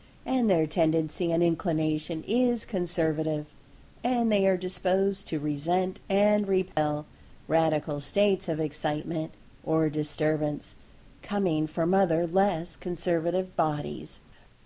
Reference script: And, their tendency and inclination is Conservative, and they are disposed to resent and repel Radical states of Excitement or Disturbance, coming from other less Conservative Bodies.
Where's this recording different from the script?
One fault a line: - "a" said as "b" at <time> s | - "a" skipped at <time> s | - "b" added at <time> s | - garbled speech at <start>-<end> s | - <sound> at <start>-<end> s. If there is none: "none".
- dropout at 6.7-6.8 s